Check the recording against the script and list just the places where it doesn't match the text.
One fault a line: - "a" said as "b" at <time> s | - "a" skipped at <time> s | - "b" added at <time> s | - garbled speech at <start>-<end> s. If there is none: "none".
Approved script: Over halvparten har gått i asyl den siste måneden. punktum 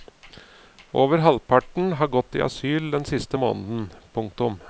none